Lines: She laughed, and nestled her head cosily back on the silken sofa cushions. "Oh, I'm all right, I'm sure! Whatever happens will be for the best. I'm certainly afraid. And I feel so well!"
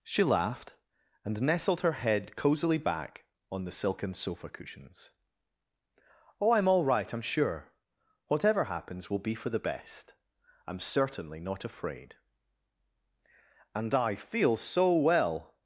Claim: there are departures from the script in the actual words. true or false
true